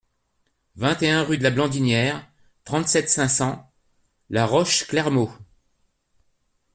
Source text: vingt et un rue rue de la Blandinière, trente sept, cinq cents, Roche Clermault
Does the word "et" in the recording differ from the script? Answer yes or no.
no